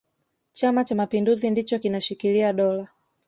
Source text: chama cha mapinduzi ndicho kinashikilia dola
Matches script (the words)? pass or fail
pass